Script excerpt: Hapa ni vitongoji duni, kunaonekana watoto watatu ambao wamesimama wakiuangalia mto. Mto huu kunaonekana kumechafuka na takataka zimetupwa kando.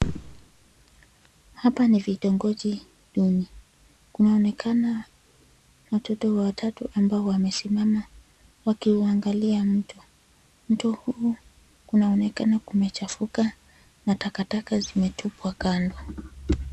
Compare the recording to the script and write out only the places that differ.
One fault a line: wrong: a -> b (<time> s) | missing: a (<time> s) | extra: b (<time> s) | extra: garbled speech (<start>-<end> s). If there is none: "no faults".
no faults